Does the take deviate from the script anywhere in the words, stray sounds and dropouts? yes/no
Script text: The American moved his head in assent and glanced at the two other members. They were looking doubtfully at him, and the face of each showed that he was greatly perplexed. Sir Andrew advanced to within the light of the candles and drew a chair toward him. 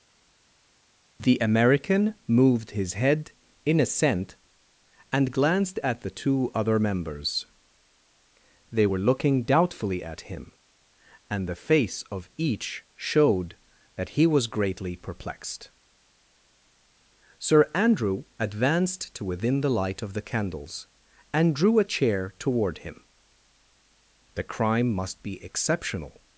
yes